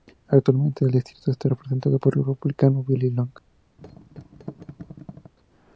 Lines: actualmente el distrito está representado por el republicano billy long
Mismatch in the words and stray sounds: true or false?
true